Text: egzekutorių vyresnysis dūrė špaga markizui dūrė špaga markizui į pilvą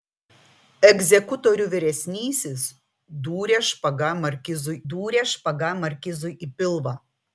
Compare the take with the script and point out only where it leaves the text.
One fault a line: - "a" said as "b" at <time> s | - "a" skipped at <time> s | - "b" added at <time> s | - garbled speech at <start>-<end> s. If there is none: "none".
none